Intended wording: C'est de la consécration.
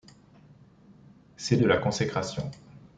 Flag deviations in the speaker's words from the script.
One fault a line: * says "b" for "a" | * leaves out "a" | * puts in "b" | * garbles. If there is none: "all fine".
all fine